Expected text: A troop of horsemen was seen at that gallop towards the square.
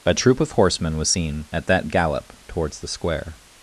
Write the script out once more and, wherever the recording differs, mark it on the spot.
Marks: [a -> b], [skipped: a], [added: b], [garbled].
A troop of horsemen was seen at that gallop towards the square.